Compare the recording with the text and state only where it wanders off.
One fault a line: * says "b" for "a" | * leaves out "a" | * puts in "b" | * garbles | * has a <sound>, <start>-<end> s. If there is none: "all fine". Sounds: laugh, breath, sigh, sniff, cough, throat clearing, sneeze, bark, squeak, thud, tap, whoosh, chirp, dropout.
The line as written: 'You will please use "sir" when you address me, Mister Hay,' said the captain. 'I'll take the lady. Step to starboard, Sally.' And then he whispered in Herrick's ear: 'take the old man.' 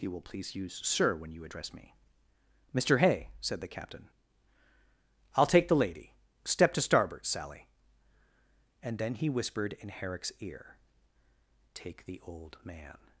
all fine